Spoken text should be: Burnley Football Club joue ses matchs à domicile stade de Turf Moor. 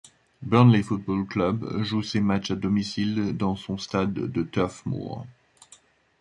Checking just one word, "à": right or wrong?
right